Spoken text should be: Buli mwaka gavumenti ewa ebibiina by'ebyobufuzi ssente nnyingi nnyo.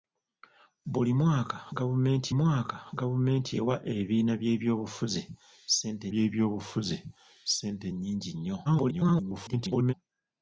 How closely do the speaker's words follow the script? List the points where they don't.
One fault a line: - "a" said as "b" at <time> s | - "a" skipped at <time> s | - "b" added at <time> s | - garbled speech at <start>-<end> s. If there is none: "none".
- "mwaka gavumenti" added at 2.4 s
- "by'ebyobufuzi ssente" added at 6.1 s
- garbled speech at 8.6-9.9 s